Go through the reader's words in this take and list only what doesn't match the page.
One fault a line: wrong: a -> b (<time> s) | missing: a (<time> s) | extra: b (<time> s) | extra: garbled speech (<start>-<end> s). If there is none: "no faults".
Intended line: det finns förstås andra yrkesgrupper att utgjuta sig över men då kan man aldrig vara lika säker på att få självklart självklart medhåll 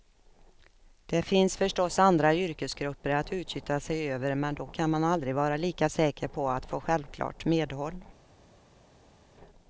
missing: självklart (7.5 s)